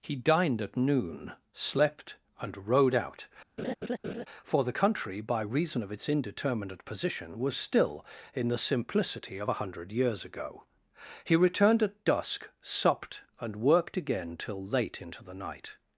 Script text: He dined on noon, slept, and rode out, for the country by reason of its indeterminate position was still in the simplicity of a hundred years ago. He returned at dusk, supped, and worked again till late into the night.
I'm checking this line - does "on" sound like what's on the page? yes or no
no